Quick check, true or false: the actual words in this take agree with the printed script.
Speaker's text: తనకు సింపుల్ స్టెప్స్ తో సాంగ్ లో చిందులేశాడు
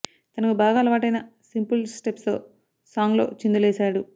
false